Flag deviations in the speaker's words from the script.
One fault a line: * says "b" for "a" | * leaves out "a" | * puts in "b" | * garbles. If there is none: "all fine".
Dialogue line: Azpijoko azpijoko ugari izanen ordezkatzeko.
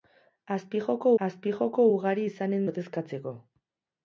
all fine